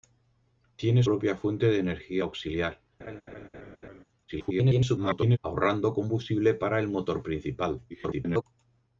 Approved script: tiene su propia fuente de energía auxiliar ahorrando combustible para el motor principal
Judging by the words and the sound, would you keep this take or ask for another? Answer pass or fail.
fail